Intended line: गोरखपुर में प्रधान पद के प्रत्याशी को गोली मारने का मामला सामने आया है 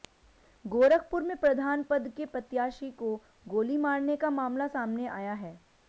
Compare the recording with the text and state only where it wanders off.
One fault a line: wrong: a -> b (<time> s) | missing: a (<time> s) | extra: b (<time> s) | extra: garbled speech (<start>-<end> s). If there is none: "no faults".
no faults